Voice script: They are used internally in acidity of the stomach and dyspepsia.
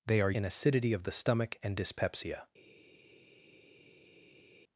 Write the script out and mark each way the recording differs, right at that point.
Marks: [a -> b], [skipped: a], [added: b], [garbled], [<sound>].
They are [skipped: used internally] in acidity of the stomach and dyspepsia.